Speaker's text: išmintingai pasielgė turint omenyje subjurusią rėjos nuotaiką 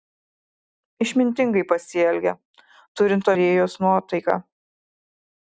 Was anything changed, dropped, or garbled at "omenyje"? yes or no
yes